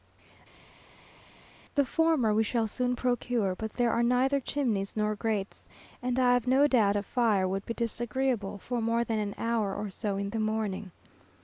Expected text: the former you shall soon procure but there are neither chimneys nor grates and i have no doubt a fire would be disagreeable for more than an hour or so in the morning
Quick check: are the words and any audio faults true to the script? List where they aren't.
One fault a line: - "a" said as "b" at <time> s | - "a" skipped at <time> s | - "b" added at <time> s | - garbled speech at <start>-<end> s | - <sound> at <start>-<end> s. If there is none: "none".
- "you" said as "we" at 2.3 s